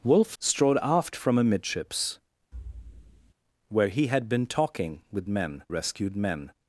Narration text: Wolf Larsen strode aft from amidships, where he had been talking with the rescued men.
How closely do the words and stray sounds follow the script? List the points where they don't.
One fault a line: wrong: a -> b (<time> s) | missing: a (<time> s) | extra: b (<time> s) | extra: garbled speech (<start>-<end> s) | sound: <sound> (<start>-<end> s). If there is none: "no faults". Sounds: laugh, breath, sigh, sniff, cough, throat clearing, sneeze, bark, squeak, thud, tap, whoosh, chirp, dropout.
missing: Larsen (0.3 s)
sound: thud (2.5-3.3 s)
wrong: the -> men (5.3 s)